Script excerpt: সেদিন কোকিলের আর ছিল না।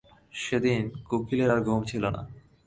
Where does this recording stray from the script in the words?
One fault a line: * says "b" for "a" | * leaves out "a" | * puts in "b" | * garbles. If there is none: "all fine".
* puts in "ঘুম"